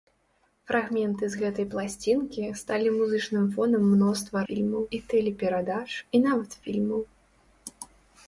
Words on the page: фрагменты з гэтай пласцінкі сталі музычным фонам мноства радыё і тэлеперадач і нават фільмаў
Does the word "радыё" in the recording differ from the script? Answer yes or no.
yes